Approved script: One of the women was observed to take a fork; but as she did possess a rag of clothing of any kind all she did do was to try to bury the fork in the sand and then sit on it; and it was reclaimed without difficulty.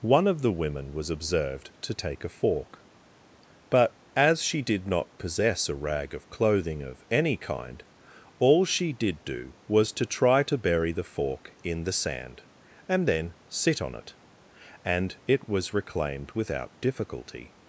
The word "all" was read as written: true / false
true